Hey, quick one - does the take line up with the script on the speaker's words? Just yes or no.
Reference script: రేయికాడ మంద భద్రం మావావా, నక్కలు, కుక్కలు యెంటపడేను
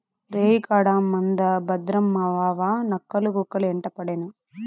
yes